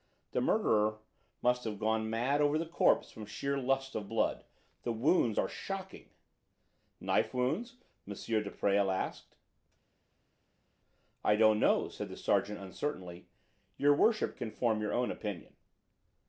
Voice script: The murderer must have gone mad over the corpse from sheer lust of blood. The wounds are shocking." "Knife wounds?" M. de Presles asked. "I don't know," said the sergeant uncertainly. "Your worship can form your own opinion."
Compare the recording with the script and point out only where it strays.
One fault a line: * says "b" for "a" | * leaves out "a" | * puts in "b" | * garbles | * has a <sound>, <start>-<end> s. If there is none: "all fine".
all fine